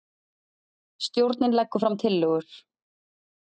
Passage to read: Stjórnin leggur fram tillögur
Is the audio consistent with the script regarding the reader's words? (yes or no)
yes